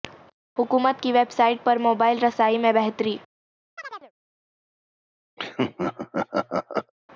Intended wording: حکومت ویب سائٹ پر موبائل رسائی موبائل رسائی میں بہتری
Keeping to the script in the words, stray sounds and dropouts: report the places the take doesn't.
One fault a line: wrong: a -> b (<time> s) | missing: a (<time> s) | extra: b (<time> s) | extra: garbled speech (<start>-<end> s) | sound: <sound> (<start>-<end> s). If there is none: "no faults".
extra: کی (1.0 s)
missing: موبائل رسائی (2.6 s)
sound: chirp (3.8-4.1 s)
sound: laugh (5.4-6.9 s)